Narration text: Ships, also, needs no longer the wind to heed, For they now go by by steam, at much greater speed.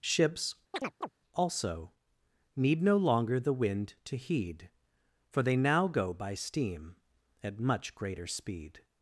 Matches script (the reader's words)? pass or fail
fail